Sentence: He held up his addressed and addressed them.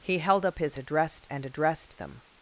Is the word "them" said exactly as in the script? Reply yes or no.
yes